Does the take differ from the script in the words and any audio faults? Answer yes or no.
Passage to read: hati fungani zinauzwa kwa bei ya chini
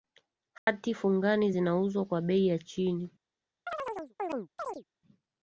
yes